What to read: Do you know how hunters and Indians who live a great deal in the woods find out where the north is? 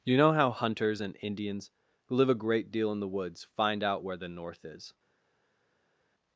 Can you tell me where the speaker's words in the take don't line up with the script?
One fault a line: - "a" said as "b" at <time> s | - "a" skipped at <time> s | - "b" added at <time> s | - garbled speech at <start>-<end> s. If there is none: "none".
- "Do" skipped at 0.0 s